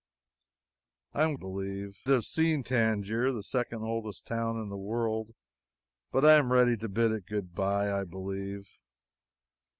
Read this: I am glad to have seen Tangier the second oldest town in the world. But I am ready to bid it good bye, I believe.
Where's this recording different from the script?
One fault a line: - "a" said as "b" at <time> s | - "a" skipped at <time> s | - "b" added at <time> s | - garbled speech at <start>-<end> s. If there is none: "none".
- "glad" said as "believe" at 1.3 s